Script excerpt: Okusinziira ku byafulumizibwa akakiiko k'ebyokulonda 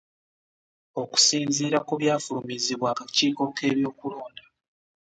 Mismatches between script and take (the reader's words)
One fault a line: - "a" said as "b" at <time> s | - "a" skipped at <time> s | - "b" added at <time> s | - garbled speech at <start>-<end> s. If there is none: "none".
none